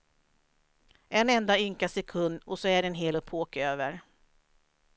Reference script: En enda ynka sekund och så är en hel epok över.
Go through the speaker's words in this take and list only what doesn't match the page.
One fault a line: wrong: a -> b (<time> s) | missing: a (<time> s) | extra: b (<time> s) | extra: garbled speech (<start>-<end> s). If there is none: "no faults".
no faults